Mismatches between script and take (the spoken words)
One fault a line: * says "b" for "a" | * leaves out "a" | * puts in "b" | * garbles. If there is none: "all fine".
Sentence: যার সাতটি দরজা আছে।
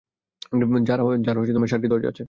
all fine